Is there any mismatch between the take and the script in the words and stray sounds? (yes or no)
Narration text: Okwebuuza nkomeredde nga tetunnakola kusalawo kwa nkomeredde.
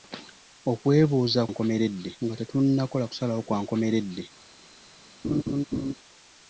yes